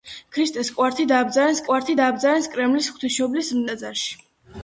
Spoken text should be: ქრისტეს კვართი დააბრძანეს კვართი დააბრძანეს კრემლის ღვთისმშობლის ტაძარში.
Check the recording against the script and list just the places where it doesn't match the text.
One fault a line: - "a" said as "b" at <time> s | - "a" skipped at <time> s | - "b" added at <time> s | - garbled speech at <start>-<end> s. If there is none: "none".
none